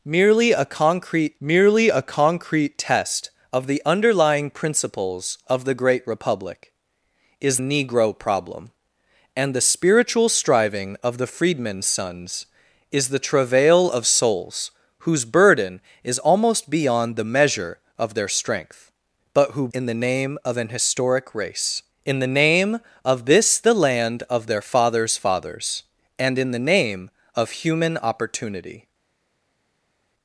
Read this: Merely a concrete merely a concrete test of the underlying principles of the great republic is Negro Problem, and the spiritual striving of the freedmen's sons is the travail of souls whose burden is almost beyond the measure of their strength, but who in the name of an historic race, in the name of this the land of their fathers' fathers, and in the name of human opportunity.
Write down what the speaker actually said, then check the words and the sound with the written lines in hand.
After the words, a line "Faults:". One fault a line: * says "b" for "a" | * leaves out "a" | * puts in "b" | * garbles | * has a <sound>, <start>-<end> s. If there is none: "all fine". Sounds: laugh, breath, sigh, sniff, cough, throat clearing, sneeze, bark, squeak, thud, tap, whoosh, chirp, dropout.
Merely a concrete merely a concrete test of the underlying principles of the great republic is Negro Problem, and the spiritual striving of the freedmen's sons is the travail of souls whose burden is almost beyond the measure of their strength, but who in the name of an historic race, in the name of this the land of their fathers' fathers, and in the name of human opportunity.
Faults:
all fine